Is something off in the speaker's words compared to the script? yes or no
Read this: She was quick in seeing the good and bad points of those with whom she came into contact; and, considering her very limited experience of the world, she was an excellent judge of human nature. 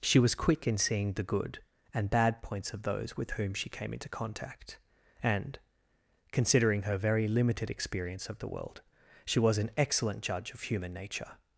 no